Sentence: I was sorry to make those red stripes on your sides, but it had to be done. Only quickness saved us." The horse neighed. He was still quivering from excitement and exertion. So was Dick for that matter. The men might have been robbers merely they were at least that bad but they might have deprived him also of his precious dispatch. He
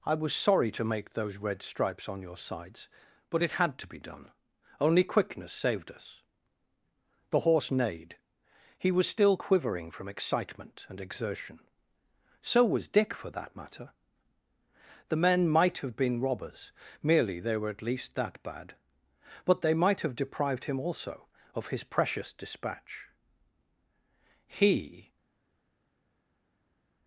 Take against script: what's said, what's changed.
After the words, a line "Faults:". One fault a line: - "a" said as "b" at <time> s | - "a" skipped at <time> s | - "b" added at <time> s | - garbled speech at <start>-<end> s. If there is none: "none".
I was sorry to make those red stripes on your sides, but it had to be done. Only quickness saved us." The horse neighed. He was still quivering from excitement and exertion. So was Dick for that matter. The men might have been robbers merely they were at least that bad but they might have deprived him also of his precious dispatch. He
Faults:
none